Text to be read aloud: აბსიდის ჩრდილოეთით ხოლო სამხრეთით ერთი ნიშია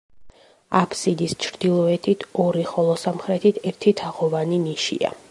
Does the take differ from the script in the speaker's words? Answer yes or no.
yes